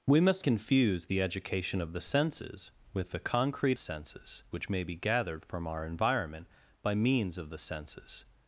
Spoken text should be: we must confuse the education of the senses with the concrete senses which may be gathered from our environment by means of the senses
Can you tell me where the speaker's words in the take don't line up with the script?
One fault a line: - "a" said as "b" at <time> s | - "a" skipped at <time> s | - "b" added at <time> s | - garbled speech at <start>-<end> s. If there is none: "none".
none